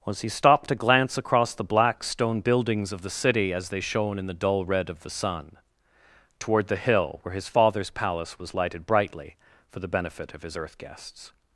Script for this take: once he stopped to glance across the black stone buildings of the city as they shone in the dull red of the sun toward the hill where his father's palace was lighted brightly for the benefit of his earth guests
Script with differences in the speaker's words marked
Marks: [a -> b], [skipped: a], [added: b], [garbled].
[once -> was] he stopped to glance across the black stone buildings of the city as they shone in the dull red of the sun toward the hill where his father's palace was lighted brightly for the benefit of his earth guests